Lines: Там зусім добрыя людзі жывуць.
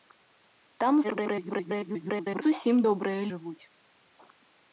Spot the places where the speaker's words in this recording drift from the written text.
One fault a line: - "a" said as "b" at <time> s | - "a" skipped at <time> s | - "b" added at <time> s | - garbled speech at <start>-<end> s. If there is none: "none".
- garbled speech at 1.0-2.4 s
- "людзі" skipped at 3.2 s